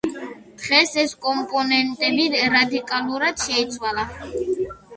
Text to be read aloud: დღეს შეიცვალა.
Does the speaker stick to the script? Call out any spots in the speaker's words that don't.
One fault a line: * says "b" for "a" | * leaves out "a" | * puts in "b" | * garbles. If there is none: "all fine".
* puts in "ეს კომპონენტები რადიკალურად"